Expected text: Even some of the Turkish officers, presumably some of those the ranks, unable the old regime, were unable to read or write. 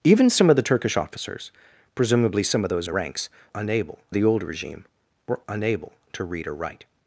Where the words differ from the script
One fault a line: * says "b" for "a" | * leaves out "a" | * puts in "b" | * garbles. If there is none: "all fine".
all fine